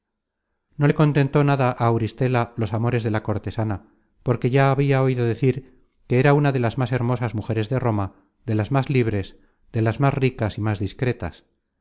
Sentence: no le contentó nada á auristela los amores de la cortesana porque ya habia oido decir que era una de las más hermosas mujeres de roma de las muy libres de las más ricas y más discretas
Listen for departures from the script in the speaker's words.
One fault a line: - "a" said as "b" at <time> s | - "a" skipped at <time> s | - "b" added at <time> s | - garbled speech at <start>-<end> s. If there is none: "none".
- "muy" said as "más" at 8.7 s